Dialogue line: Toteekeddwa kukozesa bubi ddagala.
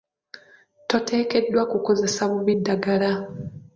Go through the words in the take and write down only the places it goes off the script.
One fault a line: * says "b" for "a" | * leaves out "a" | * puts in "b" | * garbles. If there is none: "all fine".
all fine